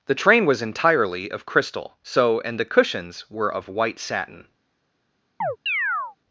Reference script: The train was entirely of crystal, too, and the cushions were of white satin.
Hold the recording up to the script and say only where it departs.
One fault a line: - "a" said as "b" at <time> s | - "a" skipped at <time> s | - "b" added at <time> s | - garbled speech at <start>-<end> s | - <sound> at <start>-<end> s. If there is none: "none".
- "too" said as "so" at 2.0 s
- chirp at 5.4-6.2 s